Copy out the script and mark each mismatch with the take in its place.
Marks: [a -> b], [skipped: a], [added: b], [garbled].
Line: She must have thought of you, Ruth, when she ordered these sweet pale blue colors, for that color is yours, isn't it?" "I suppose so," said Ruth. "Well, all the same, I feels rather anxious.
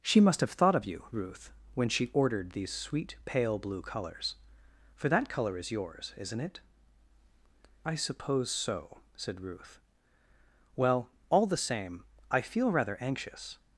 She must have thought of you, Ruth, when she ordered these sweet pale blue colors, for that color is yours, isn't it?" "I suppose so," said Ruth. "Well, all the same, I [feels -> feel] rather anxious.